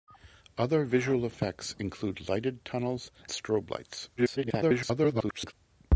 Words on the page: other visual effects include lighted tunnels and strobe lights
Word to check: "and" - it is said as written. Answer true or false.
false